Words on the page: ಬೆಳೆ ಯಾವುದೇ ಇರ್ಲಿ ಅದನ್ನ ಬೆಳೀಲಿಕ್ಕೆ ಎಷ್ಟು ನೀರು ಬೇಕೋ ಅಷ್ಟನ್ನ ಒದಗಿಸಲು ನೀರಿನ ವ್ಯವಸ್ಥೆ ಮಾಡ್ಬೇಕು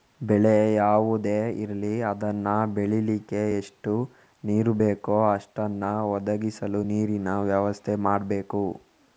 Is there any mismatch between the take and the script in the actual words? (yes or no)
no